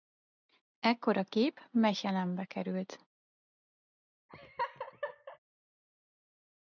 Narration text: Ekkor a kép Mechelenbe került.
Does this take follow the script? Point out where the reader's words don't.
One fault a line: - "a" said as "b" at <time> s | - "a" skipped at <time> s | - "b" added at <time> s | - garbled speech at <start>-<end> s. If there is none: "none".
none